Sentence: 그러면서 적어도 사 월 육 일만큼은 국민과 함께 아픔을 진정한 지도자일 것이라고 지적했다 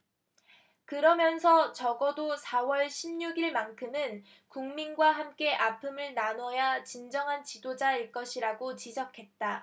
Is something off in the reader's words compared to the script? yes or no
yes